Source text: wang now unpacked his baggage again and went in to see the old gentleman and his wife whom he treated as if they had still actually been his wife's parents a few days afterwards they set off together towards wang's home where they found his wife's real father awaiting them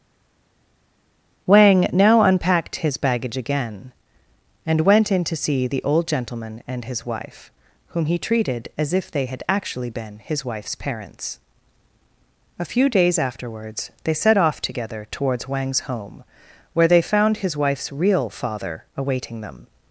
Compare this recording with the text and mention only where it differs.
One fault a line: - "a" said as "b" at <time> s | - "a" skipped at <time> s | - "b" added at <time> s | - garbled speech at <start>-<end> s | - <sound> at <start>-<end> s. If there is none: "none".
- "still" skipped at 9.4 s